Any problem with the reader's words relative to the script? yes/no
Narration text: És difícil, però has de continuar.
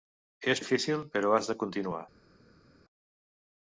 no